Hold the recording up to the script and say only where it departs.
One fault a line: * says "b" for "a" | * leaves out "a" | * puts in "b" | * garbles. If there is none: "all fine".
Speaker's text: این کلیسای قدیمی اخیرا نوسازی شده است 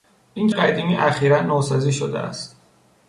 * leaves out "کلیسای"